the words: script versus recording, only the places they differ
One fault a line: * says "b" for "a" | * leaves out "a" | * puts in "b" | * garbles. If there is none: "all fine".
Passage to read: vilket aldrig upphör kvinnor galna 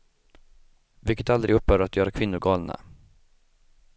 * puts in "att göra"